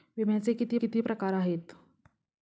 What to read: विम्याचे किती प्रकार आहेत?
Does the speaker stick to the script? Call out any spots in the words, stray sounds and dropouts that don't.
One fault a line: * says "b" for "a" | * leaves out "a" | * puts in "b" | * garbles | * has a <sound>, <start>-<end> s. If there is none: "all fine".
* puts in "किती"